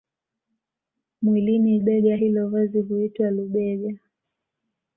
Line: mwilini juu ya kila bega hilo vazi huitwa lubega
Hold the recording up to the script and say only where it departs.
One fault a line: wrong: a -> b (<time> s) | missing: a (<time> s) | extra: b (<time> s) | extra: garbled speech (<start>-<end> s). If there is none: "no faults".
missing: juu ya kila (1.8 s)